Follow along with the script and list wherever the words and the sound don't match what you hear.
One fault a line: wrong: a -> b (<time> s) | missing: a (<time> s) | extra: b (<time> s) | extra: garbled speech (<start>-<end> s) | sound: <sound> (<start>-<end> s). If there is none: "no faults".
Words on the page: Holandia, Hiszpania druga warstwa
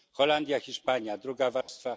sound: dropout (1.6-1.7 s)